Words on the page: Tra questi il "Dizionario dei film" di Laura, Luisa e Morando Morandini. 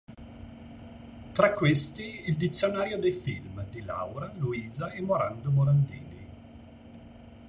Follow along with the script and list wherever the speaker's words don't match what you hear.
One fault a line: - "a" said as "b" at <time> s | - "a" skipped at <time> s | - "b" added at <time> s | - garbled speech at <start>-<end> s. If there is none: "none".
none